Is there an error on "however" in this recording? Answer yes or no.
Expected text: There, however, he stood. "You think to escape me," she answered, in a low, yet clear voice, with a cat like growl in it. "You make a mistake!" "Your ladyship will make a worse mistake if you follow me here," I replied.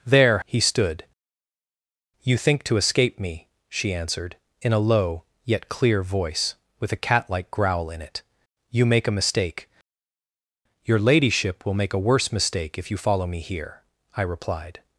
yes